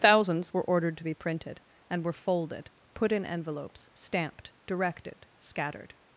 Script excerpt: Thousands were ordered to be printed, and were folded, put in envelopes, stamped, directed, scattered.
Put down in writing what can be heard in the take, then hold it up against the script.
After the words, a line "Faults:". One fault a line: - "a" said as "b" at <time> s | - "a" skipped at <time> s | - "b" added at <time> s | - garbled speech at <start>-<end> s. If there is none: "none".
Thousands were ordered to be printed, and were folded, put in envelopes, stamped, directed, scattered.
Faults:
none